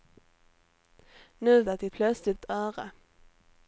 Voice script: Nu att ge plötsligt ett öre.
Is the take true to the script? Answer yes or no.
yes